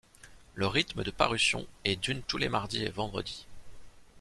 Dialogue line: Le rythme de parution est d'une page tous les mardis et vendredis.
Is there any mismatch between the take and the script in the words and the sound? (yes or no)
yes